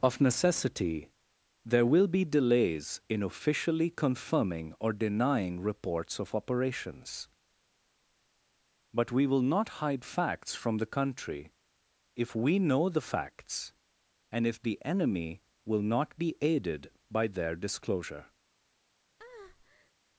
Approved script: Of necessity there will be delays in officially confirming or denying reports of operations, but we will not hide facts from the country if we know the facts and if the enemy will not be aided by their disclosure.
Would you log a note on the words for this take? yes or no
no